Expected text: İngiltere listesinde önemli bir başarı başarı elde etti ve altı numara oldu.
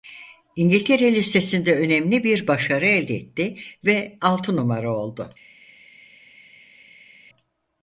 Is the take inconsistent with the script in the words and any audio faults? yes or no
yes